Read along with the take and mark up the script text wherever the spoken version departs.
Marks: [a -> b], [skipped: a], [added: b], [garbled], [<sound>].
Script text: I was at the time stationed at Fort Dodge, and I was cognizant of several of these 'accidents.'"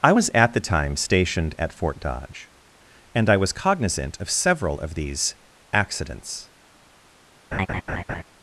I was at the time stationed at Fort Dodge, and I was cognizant of several of these 'accidents.'" [laugh]